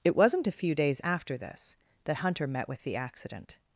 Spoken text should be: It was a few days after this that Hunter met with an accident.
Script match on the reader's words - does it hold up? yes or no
no